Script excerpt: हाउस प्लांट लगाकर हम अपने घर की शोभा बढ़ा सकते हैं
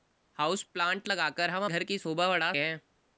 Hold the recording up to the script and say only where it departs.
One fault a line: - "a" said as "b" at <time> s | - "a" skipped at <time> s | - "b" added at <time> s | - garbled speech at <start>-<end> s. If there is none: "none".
- "अपने" skipped at 1.6 s
- "सकते" skipped at 2.5 s